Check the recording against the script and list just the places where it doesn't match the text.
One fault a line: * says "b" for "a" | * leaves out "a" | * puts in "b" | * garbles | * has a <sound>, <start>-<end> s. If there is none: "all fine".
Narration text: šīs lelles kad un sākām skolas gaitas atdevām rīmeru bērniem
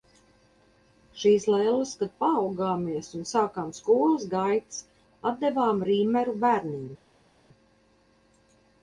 * puts in "paaugāmies"